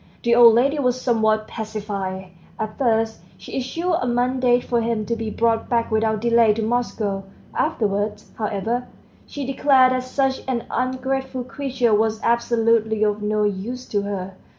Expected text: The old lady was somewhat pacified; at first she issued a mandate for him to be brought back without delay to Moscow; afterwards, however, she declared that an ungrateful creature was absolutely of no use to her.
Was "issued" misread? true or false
false